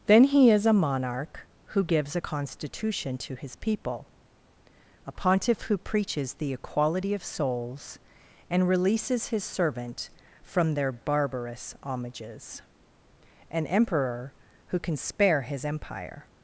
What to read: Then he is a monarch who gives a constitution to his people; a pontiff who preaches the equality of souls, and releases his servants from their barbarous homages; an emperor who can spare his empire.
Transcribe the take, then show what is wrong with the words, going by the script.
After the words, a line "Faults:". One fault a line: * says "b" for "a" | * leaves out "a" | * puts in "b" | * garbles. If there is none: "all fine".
Then he is a monarch who gives a constitution to his people; a pontiff who preaches the equality of souls, and releases his servant from their barbarous homages; an emperor who can spare his empire.
Faults:
* says "servant" for "servants"